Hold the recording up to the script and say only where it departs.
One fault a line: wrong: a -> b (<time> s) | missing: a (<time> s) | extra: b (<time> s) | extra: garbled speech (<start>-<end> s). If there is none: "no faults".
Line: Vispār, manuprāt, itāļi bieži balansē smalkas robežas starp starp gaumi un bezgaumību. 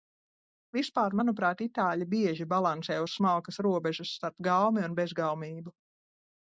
extra: uz (3.1 s)
missing: starp (4.5 s)